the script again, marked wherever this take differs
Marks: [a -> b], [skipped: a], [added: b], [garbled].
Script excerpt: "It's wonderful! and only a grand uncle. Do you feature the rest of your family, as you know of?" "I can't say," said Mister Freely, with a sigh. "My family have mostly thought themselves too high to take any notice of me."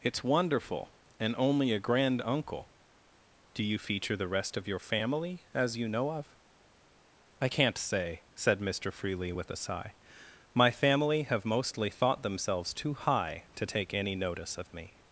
"It's wonderful! and only a grand uncle. Do you feature the rest of your family, as you know of?" "I can't say," said Mister Freely, with a sigh. "My family have mostly thought themselves too high to take any notice of me."